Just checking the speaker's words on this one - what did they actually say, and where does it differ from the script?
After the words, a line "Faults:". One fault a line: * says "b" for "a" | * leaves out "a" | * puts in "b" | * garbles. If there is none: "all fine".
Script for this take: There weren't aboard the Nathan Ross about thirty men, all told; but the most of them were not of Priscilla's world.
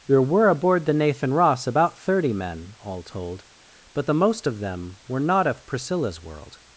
There were aboard the Nathan Ross about thirty men, all told; but the most of them were not of Priscilla's world.
Faults:
* says "were" for "weren't"